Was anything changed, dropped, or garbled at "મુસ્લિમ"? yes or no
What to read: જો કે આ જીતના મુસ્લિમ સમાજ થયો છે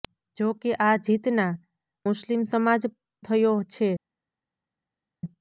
no